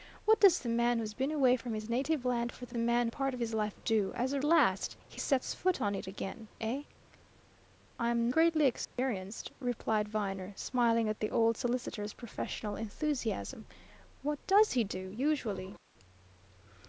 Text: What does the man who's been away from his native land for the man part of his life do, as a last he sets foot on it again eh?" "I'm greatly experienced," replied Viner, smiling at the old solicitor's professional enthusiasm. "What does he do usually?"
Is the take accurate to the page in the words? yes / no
yes